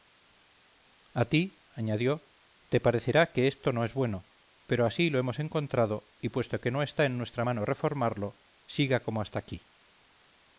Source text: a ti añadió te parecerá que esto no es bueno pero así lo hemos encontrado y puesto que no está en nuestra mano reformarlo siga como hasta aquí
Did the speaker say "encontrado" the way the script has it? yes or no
yes